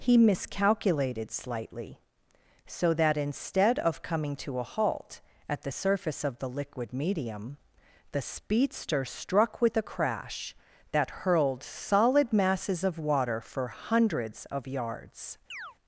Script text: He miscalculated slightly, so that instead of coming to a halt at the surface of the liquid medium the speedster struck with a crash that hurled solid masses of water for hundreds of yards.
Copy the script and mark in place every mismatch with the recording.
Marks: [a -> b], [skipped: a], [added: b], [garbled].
He miscalculated slightly, so that instead of coming to a halt at the surface of the liquid medium the speedster struck with a crash that hurled solid masses of water for hundreds of yards.